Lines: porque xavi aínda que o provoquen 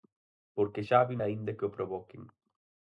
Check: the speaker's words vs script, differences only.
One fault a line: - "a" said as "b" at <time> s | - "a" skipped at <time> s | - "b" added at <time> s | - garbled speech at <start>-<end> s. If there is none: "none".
none